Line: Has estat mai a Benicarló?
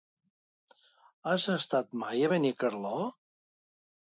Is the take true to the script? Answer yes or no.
yes